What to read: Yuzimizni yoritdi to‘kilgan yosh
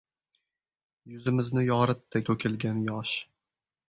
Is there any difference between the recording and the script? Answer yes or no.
no